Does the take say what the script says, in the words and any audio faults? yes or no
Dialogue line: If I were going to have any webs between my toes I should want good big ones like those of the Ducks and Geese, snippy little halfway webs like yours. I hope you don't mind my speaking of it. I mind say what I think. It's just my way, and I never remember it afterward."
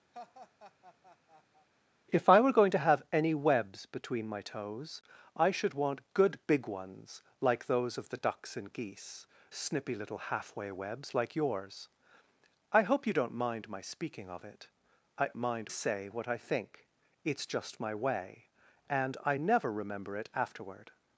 no